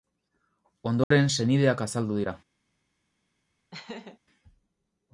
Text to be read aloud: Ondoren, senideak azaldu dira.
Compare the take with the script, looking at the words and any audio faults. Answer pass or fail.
fail